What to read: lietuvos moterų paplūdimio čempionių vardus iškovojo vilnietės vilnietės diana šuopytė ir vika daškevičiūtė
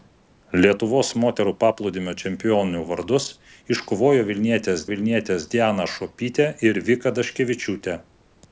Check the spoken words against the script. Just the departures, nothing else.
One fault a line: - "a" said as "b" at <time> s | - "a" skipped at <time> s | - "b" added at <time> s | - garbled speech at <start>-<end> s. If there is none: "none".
none